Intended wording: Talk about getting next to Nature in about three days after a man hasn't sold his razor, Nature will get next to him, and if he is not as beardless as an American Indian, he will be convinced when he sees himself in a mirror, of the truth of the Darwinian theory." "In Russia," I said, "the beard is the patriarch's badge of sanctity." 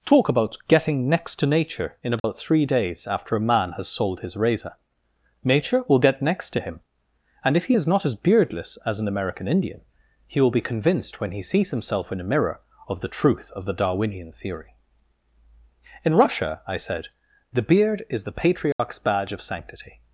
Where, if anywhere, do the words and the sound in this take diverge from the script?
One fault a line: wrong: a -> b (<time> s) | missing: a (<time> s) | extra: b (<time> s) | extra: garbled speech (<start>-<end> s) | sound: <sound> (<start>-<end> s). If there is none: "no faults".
sound: dropout (2.2-2.2 s)
wrong: hasn't -> has (3.7 s)
sound: dropout (18.7-18.8 s)